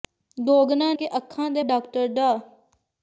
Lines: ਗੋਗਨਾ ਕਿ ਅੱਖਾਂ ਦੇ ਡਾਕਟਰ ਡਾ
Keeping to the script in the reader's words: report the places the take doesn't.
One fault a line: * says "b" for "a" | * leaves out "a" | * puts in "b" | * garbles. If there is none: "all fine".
all fine